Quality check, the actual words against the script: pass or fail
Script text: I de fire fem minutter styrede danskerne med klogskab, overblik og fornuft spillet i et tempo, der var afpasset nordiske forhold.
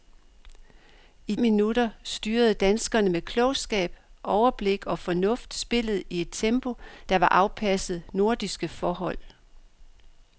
fail